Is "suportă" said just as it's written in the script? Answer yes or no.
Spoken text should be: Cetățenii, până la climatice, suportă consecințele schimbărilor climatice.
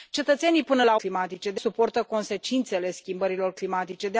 yes